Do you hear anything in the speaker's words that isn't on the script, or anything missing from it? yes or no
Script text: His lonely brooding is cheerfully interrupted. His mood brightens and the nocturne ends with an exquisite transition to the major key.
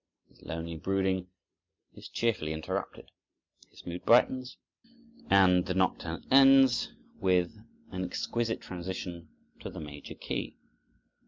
no